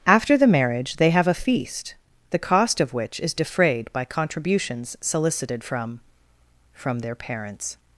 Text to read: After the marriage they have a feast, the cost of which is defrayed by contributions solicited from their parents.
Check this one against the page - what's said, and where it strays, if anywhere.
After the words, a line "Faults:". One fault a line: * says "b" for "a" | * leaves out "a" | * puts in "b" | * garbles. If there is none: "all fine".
After the marriage they have a feast, the cost of which is defrayed by contributions solicited from from their parents.
Faults:
* puts in "from"